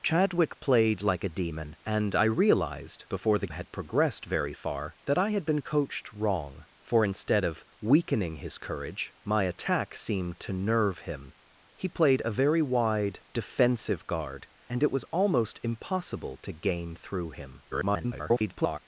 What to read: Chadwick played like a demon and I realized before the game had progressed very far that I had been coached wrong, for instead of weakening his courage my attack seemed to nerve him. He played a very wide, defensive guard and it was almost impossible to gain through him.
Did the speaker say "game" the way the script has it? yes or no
no